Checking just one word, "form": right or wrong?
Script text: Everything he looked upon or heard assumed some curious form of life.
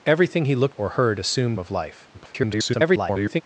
wrong